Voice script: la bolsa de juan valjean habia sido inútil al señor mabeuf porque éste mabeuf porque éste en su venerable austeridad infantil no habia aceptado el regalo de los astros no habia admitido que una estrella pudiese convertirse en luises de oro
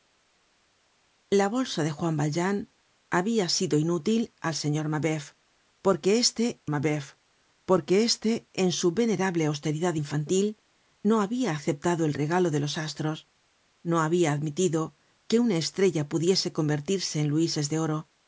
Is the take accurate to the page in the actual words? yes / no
yes